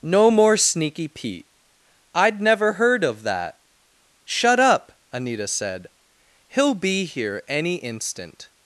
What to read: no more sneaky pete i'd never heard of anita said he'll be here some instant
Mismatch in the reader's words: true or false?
true